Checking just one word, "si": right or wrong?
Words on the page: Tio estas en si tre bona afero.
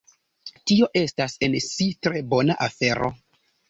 right